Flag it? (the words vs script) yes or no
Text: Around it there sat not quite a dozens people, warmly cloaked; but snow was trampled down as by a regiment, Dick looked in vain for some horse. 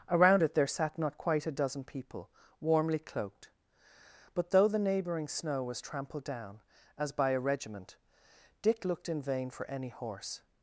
yes